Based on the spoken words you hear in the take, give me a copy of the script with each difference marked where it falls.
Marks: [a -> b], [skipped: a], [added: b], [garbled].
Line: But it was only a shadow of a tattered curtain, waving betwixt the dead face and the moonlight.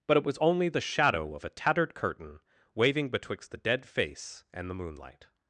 But it was only [a -> the] shadow of a tattered curtain, waving betwixt the dead face and the moonlight.